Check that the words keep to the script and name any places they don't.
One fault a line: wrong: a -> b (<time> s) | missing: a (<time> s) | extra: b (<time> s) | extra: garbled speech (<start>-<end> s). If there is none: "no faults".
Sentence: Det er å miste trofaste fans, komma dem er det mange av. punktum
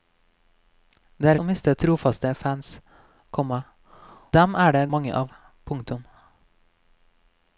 no faults